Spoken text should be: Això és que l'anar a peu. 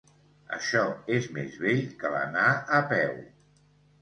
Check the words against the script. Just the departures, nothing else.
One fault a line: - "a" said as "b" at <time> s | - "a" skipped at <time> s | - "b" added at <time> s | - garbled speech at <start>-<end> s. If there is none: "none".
- "més vell" added at 1.4 s